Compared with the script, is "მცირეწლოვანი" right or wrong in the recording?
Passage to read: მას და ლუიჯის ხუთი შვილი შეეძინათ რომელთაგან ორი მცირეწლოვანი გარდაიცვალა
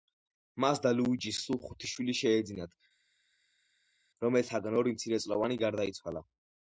right